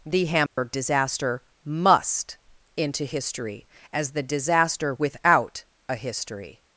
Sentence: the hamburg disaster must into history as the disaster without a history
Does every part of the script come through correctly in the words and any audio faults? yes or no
no